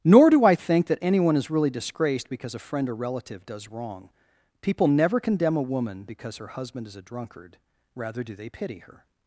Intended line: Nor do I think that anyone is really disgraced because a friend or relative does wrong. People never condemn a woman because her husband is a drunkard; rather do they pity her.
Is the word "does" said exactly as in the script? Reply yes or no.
yes